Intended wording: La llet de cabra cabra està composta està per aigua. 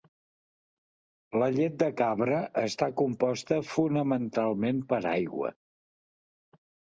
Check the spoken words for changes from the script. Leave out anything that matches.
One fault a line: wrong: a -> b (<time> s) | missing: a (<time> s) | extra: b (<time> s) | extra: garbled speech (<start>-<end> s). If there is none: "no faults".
missing: cabra (2.4 s)
wrong: està -> fonamentalment (3.7 s)